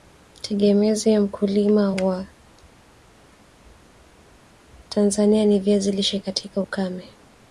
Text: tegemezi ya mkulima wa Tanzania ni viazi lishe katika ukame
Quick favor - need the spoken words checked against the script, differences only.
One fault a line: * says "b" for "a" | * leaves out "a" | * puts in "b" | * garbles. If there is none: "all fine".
all fine